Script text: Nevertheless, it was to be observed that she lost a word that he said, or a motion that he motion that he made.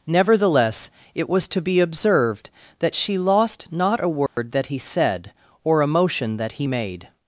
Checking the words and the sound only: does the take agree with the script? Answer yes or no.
no